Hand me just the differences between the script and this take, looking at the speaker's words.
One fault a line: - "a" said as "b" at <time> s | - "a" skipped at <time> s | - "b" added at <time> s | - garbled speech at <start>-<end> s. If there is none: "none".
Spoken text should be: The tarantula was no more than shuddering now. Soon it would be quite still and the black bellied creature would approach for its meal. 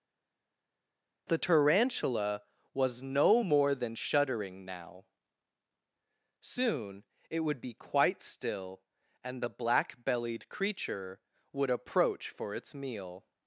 none